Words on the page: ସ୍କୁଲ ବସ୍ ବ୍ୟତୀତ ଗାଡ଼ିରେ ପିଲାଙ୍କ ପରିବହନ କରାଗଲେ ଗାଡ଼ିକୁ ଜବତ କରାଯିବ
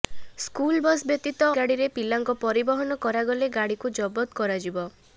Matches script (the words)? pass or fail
pass